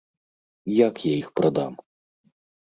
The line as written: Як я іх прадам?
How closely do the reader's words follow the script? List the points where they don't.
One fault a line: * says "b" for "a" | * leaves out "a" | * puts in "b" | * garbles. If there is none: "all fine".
all fine